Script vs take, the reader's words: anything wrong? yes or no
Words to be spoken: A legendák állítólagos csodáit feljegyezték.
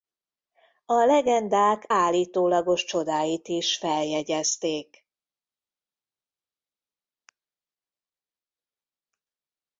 yes